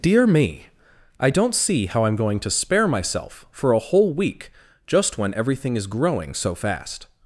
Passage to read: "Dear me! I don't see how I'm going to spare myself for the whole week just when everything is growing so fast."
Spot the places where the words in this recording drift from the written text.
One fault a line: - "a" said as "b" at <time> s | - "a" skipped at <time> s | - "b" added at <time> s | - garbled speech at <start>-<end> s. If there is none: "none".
- "the" said as "a" at 3.7 s